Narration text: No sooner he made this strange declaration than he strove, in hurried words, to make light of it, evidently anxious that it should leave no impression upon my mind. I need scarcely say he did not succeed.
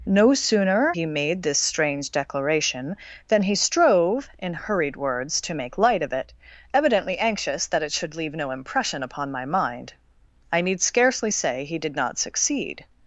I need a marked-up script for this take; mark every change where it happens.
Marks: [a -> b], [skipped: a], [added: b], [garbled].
No sooner he made this strange declaration than he strove, in hurried words, to make light of it, evidently anxious that it should leave no impression upon my mind. I need scarcely say he did not succeed.